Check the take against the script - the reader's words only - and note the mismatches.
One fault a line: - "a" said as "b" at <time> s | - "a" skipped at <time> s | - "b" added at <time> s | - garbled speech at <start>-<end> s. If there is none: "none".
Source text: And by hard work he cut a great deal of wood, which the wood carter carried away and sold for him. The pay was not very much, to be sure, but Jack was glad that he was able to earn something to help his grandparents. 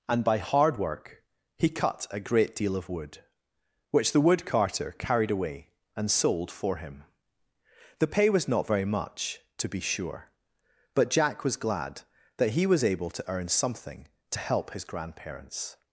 none